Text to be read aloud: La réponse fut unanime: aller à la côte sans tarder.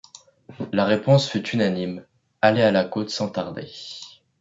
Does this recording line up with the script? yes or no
yes